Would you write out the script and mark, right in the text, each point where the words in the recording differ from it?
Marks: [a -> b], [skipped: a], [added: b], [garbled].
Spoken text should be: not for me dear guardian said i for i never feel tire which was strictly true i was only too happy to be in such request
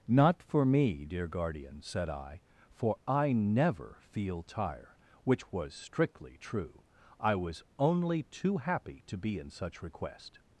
not for me dear guardian said i for i never feel tire which was strictly true i was only too happy to be in such request